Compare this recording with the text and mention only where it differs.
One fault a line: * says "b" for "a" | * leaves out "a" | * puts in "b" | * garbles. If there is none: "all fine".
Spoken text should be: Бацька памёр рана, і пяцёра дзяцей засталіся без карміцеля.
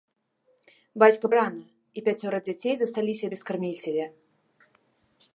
* leaves out "памёр"